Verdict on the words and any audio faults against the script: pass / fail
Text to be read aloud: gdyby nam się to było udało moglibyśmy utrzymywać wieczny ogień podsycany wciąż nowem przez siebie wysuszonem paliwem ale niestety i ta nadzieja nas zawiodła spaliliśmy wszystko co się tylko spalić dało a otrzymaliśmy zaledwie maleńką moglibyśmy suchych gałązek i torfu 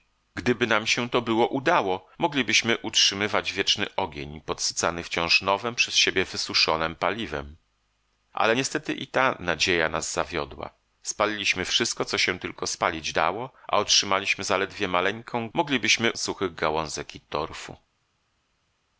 pass